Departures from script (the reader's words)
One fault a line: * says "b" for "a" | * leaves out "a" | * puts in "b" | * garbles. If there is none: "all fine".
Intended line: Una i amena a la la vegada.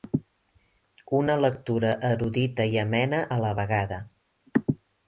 * puts in "lectura erudita"
* leaves out "la"